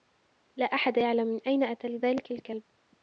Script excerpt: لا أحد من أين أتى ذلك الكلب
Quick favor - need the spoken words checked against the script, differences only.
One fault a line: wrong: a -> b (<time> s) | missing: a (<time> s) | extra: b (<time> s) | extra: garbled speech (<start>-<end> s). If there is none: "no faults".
extra: يعلم (1.0 s)